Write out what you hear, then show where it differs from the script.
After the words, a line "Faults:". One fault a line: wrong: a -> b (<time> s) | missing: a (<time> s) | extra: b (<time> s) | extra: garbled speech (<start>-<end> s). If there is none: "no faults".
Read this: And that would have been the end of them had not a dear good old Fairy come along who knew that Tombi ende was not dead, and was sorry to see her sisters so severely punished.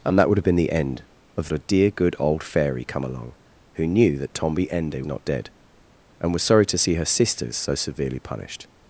And that would have been the end of a dear good old Fairy come along who knew that Tombi ende not dead, and was sorry to see her sisters so severely punished.
Faults:
missing: them had not (1.5 s)
missing: was (5.0 s)